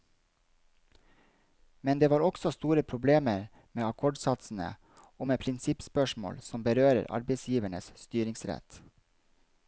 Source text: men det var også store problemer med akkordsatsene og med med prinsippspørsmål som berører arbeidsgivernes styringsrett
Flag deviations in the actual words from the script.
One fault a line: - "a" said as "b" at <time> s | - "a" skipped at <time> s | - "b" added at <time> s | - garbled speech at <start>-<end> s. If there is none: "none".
- "med" skipped at 5.4 s